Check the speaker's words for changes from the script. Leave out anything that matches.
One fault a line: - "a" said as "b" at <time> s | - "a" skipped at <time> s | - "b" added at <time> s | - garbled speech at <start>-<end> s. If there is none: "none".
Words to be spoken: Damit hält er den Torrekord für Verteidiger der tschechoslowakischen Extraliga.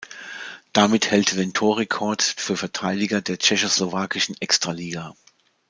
none